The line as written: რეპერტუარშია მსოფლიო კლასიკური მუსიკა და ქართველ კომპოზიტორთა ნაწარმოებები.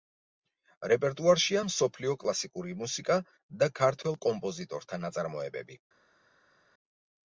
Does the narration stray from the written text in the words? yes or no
no